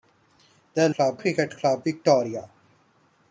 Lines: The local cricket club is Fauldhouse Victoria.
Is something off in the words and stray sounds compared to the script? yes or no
yes